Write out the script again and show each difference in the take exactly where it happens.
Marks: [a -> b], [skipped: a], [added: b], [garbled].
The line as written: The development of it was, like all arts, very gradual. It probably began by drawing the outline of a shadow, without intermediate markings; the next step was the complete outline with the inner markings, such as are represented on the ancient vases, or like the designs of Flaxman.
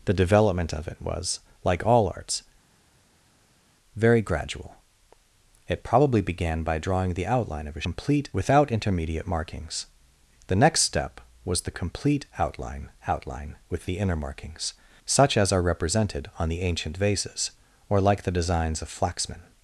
The development of it was, like all arts, very gradual. It probably began by drawing the outline of a [shadow, -> complete] without intermediate markings; the next step was the complete outline [added: outline] with the inner markings, such as are represented on the ancient vases, or like the designs of Flaxman.